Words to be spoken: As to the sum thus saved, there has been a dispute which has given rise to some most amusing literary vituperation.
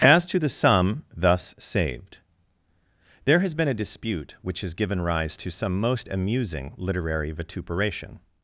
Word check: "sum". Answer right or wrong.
right